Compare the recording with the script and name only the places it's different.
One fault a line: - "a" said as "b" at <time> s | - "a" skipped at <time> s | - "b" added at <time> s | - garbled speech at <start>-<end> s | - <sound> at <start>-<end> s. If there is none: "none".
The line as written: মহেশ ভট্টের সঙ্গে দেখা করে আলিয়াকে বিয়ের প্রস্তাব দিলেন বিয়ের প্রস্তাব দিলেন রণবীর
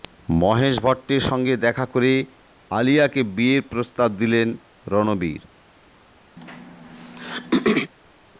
- "বিয়ের প্রস্তাব দিলেন" skipped at 4.5 s
- throat clearing at 6.4-7.9 s